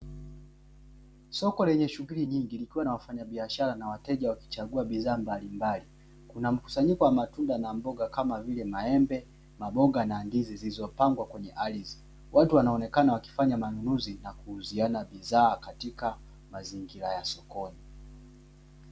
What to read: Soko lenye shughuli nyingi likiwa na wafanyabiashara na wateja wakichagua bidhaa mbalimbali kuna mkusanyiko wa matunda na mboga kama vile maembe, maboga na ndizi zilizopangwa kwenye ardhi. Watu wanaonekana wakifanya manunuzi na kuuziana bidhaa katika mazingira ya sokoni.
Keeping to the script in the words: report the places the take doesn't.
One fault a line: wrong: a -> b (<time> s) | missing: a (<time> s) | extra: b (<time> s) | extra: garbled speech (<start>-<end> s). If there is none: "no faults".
no faults